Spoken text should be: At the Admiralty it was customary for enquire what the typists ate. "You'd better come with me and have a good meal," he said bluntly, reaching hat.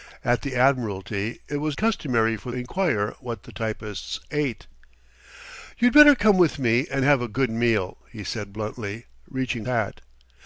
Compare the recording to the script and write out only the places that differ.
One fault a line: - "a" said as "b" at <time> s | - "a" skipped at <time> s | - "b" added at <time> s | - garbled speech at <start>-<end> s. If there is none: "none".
none